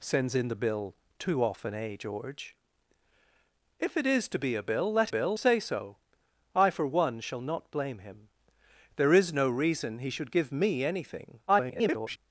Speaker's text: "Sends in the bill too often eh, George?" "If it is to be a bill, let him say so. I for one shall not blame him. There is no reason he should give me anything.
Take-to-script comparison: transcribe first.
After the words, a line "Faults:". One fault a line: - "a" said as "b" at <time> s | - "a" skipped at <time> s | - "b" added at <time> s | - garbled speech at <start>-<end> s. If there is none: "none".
"Sends in the bill too often eh, George?" "If it is to be a bill, let bill say so. I for one shall not blame him. There is no reason he should give me anything. [garbled]
Faults:
- "him" said as "bill" at 5.1 s
- garbled speech at 11.5-12.2 s